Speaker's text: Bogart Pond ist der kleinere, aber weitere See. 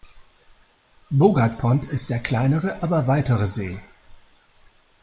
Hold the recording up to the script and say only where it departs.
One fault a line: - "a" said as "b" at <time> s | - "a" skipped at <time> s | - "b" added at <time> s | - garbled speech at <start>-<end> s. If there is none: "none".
none